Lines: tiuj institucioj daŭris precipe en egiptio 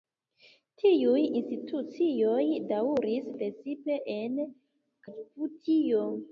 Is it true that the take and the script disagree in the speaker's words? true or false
false